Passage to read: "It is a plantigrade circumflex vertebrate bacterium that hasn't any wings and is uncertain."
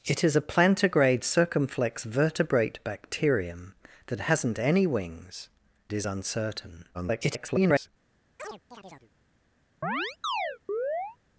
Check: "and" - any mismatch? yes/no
yes